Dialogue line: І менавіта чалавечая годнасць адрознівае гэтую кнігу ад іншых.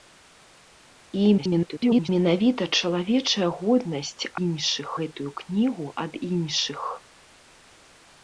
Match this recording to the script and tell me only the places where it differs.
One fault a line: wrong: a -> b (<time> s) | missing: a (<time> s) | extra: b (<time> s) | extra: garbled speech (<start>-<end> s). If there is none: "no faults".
extra: garbled speech (1.4-2.1 s)
wrong: адрознівае -> іншых (4.4 s)